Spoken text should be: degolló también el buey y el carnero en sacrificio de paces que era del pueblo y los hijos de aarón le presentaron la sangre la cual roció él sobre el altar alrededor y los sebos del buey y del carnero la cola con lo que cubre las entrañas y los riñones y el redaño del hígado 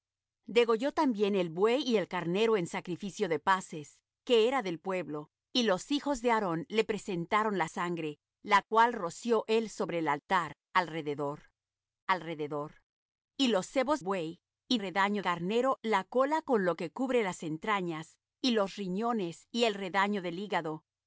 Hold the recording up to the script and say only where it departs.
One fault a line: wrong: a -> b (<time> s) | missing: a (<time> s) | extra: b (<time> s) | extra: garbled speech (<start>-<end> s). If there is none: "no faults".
extra: alrededor (12.1 s)
missing: del (14.0 s)
wrong: del -> redaño (14.8 s)